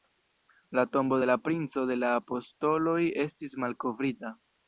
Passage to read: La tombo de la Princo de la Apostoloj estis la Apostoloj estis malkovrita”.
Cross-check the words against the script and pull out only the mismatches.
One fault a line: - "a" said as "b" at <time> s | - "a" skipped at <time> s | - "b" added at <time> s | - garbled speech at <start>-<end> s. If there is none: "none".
- "la Apostoloj estis" skipped at 3.6 s